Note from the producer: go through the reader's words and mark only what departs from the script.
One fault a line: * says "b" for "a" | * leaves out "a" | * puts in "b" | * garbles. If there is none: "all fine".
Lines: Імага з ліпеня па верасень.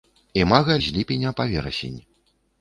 all fine